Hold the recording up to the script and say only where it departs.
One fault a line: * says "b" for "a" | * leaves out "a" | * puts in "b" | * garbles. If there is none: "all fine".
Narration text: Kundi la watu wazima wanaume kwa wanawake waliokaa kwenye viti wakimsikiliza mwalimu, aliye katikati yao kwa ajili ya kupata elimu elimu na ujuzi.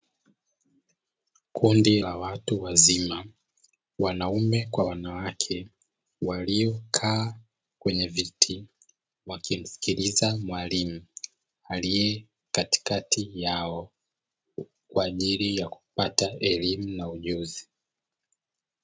* leaves out "elimu"